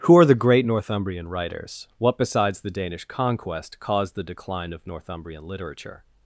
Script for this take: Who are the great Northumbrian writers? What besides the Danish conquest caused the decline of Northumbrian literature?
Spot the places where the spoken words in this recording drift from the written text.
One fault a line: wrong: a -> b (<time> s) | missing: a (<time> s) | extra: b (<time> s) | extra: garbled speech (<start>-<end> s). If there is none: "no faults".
no faults